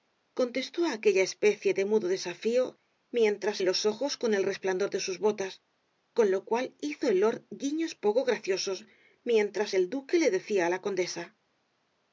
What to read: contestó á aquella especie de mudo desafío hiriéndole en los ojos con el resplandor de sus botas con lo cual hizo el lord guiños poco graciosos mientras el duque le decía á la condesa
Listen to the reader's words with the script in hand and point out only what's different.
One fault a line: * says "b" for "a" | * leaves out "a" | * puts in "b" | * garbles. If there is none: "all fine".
* says "mientras" for "hiriéndole"